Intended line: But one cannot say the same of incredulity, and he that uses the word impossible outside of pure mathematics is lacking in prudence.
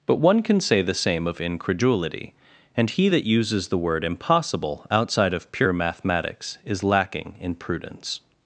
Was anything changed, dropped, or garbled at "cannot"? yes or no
yes